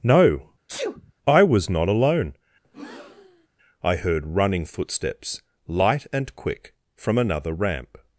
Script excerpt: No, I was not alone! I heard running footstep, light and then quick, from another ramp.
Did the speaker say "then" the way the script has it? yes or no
no